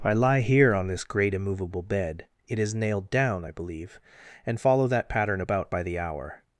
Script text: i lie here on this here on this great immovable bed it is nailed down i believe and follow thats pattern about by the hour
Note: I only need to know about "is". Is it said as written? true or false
true